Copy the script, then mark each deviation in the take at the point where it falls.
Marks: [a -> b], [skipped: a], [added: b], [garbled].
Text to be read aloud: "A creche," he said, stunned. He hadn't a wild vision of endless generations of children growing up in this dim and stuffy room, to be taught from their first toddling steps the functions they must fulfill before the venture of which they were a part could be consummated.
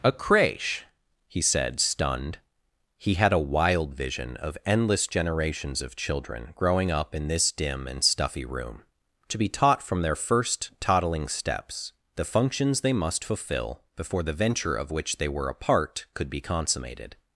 "A creche," he said, stunned. He [hadn't -> had] a wild vision of endless generations of children growing up in this dim and stuffy room, to be taught from their first toddling steps the functions they must fulfill before the venture of which they were a part could be consummated.